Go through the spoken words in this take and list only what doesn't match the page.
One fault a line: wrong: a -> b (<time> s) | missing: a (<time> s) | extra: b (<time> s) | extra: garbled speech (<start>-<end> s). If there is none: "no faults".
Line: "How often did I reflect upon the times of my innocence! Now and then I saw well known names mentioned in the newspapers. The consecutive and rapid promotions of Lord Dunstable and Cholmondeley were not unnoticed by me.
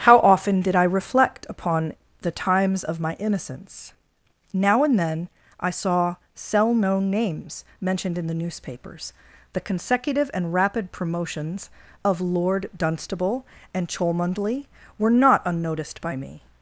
wrong: well -> cell (6.3 s)